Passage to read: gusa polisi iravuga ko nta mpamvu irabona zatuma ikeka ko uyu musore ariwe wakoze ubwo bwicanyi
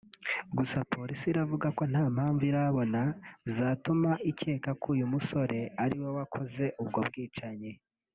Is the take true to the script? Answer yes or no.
yes